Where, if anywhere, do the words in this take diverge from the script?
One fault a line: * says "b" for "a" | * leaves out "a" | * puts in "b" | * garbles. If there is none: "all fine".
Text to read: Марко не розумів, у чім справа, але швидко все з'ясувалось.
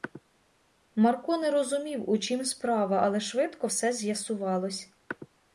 all fine